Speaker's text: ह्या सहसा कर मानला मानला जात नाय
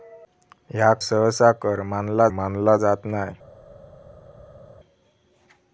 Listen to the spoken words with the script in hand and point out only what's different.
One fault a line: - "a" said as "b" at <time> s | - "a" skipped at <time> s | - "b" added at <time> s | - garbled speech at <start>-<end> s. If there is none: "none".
none